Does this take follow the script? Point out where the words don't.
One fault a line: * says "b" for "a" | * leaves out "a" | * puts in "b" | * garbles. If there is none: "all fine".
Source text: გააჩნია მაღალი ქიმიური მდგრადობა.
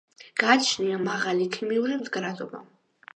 all fine